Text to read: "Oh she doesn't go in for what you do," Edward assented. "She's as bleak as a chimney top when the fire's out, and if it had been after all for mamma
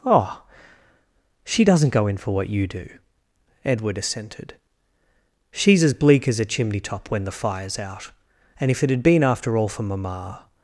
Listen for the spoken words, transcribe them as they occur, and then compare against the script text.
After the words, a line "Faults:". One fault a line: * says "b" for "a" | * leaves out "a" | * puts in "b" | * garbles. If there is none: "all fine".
"Oh she doesn't go in for what you do," Edward assented. "She's as bleak as a chimney top when the fire's out, and if it had been after all for mamma
Faults:
all fine